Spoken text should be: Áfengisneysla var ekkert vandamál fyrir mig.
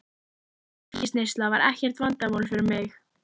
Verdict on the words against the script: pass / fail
pass